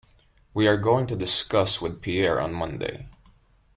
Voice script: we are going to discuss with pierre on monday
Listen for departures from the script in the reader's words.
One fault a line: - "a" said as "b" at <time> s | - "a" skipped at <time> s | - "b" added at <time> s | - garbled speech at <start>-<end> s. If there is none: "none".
none